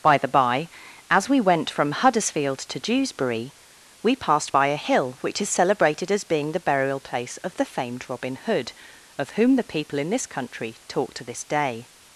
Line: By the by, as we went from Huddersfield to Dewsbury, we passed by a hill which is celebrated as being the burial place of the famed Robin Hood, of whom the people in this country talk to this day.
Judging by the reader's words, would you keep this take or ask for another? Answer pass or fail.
pass